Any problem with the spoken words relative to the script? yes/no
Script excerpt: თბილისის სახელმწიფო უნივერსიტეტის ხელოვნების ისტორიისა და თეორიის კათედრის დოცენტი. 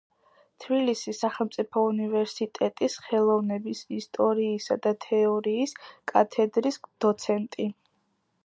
no